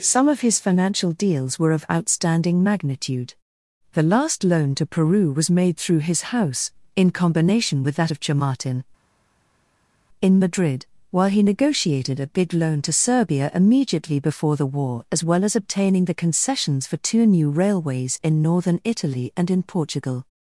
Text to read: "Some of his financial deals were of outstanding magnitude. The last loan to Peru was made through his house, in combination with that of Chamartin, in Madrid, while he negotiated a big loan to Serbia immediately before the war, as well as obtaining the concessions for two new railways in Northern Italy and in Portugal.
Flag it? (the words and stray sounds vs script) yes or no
no